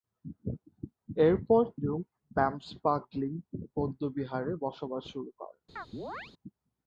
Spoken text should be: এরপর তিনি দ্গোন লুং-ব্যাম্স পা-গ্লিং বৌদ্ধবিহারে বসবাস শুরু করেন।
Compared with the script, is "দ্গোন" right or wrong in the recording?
wrong